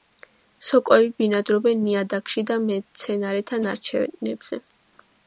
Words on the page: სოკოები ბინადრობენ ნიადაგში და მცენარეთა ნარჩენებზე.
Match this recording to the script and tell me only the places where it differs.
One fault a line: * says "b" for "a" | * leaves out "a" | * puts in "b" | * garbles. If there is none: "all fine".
all fine